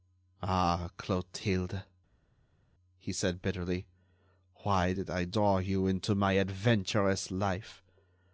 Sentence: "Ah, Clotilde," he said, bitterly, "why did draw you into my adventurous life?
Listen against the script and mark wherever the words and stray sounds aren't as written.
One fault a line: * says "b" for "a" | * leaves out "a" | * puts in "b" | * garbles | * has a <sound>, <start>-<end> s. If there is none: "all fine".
* puts in "I"